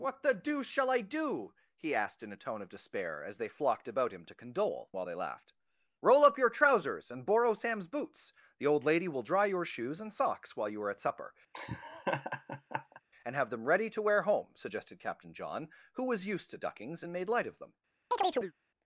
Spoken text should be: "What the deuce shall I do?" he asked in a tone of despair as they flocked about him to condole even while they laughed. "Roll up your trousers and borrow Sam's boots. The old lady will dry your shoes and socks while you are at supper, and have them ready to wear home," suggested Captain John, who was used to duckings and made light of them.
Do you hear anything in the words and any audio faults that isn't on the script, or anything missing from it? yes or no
yes